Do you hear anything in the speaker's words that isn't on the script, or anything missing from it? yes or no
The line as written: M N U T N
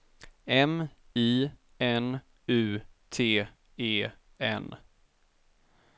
yes